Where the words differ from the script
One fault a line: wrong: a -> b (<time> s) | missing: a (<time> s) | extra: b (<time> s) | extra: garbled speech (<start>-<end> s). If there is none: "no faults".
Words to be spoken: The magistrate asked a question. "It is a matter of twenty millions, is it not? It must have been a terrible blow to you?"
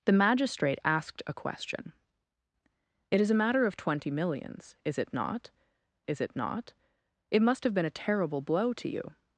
extra: is it not (6.1 s)